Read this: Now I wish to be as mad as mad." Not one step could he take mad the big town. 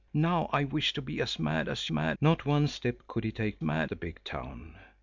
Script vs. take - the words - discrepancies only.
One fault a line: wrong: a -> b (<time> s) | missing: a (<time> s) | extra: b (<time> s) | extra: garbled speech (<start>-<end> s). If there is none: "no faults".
no faults